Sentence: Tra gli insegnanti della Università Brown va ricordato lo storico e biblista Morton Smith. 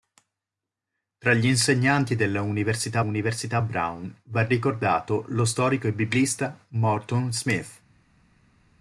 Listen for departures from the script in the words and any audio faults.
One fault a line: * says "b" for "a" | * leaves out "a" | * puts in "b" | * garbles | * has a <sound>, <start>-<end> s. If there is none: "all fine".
* puts in "Università"